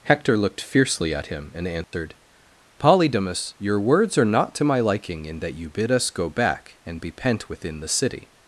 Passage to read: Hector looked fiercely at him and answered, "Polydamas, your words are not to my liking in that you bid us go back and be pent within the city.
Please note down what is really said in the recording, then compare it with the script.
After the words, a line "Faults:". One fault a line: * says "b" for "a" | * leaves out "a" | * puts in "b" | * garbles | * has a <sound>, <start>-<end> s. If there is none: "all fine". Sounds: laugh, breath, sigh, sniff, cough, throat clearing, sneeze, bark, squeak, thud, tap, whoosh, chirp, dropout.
Hector looked fiercely at him and answered, "Polydamas, your words are not to my liking in that you bid us go back and be pent within the city.
Faults:
* has a dropout, 1.8-1.9 s